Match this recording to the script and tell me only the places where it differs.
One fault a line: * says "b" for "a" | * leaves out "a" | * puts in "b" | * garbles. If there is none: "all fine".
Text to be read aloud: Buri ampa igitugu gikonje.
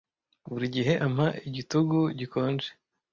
* puts in "gihe"